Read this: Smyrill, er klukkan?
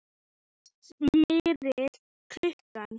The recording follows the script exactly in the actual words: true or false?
true